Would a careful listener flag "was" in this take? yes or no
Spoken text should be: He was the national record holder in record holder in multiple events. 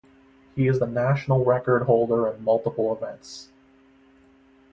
yes